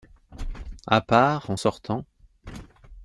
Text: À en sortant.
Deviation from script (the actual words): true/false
true